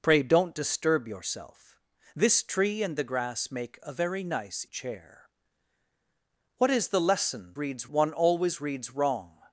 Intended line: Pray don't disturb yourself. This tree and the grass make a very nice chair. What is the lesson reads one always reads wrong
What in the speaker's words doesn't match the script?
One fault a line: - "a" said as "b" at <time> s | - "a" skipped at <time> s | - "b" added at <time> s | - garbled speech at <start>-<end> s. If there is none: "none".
none